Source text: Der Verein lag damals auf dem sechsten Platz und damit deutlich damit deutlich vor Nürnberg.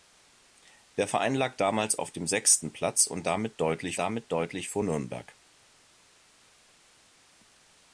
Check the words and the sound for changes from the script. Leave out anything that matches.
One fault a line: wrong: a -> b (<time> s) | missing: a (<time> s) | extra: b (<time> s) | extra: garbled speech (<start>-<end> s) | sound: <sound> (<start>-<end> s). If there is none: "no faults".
no faults